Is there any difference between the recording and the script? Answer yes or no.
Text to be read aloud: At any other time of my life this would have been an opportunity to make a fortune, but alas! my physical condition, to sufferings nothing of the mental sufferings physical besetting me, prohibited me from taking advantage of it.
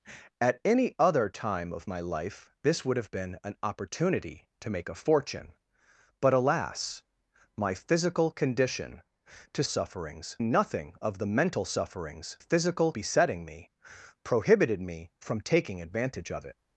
no